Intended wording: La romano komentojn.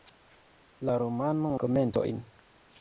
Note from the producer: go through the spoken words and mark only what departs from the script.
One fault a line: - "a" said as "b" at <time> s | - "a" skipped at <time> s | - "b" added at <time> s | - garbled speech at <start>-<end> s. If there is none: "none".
none